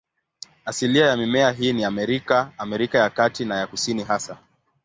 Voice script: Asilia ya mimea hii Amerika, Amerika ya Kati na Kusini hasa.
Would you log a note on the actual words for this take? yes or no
yes